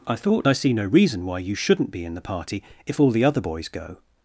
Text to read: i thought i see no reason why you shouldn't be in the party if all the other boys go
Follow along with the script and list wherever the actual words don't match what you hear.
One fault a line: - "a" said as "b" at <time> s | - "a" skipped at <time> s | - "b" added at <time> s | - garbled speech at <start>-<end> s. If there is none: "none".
none